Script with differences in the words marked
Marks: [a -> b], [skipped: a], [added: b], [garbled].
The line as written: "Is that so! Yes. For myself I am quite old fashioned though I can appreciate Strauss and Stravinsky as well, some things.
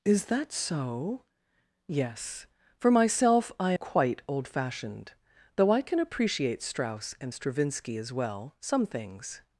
"Is that so! Yes. For myself I [skipped: am] quite old fashioned though I can appreciate Strauss and Stravinsky as well, some things.